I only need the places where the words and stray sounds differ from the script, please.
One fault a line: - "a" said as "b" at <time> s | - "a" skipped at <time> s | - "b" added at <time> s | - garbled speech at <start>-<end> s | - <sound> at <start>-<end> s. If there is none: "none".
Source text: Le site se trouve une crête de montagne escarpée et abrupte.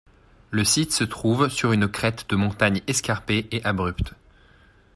- "sur" added at 1.5 s